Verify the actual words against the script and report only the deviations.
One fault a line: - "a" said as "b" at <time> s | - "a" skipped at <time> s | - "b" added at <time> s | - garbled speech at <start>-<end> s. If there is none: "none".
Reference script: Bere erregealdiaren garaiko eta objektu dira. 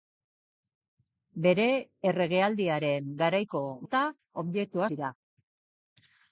none